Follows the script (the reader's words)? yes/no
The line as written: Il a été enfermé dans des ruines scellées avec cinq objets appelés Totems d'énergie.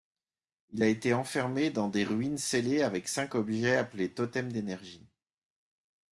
yes